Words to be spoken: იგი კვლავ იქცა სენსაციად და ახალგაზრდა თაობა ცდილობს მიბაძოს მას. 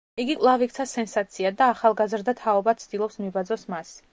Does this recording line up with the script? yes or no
yes